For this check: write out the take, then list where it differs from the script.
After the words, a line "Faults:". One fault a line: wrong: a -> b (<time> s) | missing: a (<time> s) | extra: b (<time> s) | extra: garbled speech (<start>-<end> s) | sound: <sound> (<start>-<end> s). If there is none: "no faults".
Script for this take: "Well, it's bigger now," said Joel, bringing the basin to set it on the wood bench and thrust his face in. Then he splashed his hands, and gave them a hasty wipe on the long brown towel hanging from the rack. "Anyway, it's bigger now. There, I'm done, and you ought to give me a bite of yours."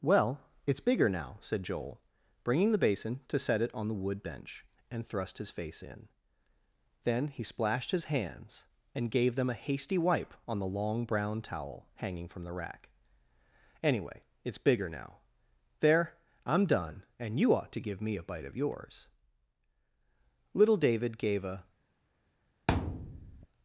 "Well, it's bigger now," said Joel, bringing the basin to set it on the wood bench and thrust his face in. Then he splashed his hands, and gave them a hasty wipe on the long brown towel hanging from the rack. "Anyway, it's bigger now. There, I'm done, and you ought to give me a bite of yours." Little David gave a
Faults:
extra: Little David gave a (20.5 s)
sound: thud (22.7-23.5 s)